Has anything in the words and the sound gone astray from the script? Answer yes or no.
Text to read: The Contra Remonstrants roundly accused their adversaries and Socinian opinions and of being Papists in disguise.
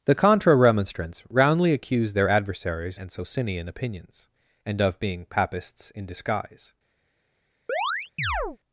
yes